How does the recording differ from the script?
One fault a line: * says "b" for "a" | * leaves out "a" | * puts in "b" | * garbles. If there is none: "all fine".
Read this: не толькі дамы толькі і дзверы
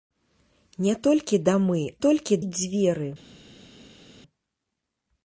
all fine